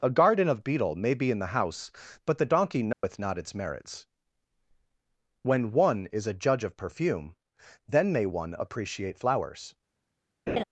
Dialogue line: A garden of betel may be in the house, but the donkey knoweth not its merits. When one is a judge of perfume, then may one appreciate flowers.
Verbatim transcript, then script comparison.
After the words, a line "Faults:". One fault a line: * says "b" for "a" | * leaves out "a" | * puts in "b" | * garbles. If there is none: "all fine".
A garden of betel may be in the house, but the donkey knoweth not its merits. When one is a judge of perfume, then may one appreciate flowers.
Faults:
all fine